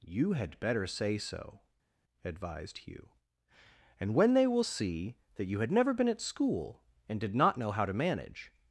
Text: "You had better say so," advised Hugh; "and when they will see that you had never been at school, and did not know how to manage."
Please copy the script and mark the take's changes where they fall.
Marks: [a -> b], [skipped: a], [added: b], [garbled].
"You had better say so," advised Hugh; "and when they will see that you had never been at school, and did not know how to manage."